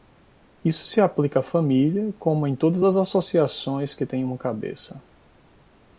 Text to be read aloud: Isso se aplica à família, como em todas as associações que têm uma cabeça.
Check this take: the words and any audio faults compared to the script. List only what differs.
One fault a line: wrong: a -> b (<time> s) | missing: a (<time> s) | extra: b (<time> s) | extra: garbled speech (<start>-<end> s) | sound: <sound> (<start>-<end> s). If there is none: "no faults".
no faults